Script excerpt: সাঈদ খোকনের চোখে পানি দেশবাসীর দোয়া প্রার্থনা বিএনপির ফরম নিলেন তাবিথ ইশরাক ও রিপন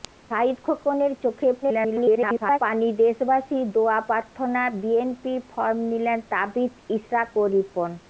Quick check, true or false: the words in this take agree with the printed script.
false